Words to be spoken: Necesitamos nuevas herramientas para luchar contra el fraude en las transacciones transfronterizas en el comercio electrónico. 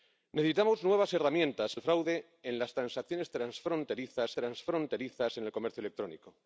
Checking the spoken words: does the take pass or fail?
fail